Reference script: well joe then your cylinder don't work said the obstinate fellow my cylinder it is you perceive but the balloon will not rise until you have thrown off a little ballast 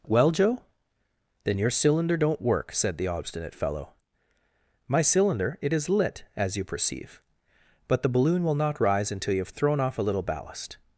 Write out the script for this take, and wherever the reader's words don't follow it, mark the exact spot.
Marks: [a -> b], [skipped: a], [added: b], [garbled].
well joe then your cylinder don't work said the obstinate fellow my cylinder it is [added: lit as] you perceive but the balloon will not rise until you have thrown off a little ballast